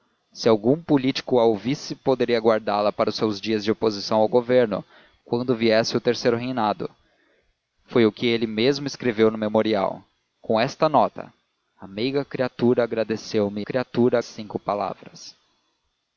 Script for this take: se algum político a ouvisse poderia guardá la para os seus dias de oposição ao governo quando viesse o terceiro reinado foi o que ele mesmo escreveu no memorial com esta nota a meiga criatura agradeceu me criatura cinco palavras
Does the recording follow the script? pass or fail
pass